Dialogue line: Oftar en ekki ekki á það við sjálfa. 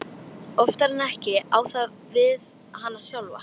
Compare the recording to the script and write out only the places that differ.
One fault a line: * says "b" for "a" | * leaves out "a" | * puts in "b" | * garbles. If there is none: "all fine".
* leaves out "ekki"
* puts in "hana"